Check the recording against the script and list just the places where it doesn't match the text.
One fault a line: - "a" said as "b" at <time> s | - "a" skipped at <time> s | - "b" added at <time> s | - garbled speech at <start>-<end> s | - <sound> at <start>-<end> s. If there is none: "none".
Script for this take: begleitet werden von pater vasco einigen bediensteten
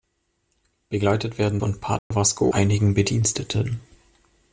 - dropout at 2.0-2.1 s